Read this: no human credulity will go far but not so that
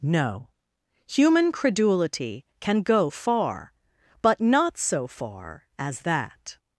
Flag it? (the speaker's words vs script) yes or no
yes